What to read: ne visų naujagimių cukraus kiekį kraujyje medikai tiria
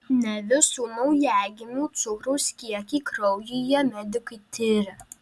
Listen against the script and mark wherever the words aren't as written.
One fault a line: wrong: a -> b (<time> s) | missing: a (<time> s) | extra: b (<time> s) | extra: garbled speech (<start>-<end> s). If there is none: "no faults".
no faults